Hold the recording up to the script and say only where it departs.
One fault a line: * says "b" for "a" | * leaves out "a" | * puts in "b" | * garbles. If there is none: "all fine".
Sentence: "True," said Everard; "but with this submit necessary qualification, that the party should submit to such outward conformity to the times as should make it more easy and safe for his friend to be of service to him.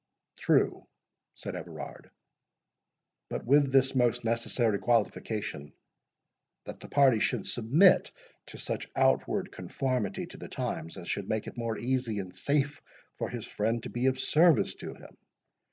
* says "most" for "submit"